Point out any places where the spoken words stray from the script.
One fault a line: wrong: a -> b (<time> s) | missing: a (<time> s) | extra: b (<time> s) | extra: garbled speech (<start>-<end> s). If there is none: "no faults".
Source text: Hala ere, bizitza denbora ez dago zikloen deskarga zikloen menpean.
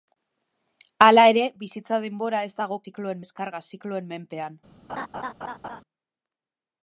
no faults